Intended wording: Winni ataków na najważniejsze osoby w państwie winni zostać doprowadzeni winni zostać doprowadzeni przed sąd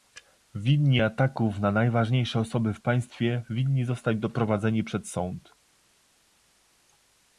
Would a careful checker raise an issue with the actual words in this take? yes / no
yes